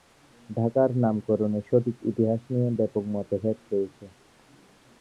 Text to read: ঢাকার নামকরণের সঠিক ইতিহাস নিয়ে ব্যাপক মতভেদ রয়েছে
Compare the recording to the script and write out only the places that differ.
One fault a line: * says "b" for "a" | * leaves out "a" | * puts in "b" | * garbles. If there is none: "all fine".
all fine